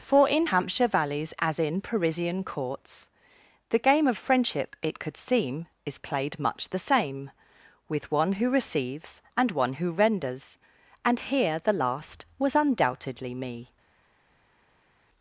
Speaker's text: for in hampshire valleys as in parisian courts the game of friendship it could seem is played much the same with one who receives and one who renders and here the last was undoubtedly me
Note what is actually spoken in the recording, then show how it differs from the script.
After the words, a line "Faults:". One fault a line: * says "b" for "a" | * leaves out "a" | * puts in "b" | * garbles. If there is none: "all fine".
for in hampshire valleys as in parisian courts the game of friendship it could seem is played much the same with one who receives and one who renders and here the last was undoubtedly me
Faults:
all fine